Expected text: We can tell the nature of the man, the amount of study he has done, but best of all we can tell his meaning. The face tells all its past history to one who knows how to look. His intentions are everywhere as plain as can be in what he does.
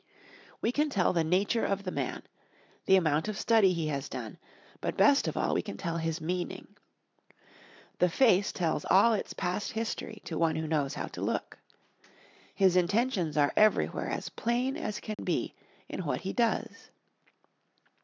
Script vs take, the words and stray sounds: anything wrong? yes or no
yes